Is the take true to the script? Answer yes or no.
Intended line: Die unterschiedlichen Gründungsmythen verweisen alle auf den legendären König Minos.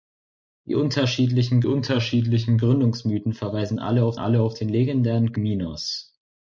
no